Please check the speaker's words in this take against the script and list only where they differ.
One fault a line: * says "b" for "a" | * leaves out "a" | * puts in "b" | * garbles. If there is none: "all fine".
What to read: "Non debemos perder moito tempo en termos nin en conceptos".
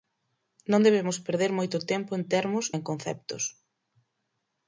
* leaves out "nin"